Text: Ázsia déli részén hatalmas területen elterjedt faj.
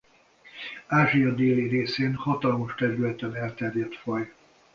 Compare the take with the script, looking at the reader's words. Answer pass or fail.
pass